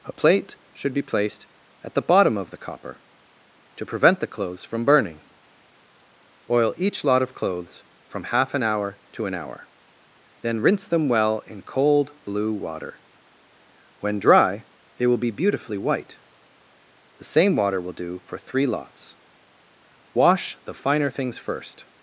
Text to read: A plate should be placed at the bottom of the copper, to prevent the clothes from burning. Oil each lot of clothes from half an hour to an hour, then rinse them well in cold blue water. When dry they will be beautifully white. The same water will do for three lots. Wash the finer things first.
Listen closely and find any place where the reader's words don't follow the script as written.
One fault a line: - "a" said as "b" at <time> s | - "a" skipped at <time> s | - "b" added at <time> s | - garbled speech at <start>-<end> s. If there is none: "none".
none